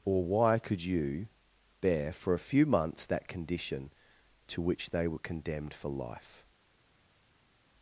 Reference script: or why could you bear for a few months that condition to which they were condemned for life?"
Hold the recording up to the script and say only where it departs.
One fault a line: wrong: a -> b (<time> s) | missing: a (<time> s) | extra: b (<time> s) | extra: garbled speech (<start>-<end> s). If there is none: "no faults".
no faults